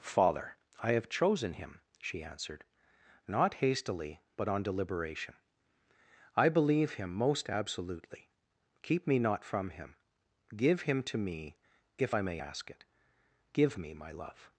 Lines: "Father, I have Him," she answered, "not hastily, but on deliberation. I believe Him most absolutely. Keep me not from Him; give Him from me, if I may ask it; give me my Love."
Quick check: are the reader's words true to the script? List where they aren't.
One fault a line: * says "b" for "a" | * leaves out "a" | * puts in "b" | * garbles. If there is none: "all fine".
* puts in "chosen"
* says "to" for "from"